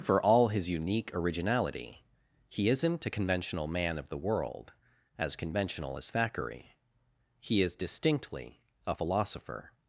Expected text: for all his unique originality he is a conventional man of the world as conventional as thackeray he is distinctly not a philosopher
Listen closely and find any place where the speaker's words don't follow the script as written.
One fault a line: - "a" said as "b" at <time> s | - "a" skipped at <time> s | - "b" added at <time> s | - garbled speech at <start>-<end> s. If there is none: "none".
- "is" said as "isn't" at 2.7 s
- "not" skipped at 8.6 s